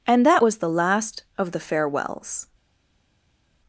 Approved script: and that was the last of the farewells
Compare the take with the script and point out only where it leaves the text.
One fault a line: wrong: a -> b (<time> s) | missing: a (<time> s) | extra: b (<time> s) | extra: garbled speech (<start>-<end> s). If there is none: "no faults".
no faults